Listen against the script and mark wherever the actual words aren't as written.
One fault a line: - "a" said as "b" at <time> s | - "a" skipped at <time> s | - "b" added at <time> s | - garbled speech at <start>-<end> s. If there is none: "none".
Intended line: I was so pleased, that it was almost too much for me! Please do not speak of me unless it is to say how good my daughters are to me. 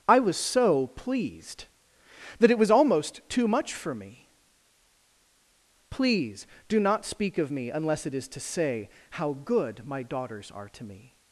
none